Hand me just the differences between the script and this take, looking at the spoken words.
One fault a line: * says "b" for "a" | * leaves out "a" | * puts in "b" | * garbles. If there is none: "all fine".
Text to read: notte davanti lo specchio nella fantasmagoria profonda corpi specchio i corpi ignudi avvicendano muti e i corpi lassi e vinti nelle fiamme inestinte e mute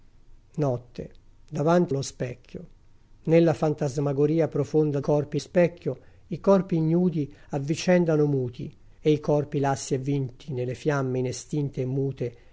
all fine